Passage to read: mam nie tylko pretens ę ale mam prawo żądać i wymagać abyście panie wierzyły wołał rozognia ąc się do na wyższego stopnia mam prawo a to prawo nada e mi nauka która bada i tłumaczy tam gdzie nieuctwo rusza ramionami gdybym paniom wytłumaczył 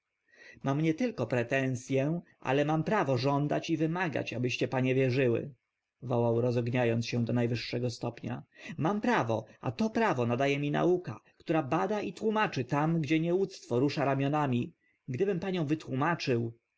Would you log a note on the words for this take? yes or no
no